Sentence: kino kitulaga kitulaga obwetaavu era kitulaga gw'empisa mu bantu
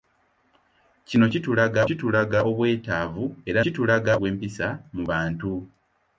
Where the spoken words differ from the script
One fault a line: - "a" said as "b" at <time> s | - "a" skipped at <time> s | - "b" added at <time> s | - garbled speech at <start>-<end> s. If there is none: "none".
none